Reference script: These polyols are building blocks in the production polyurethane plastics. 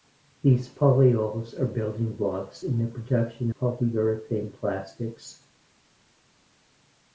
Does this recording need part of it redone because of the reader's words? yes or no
no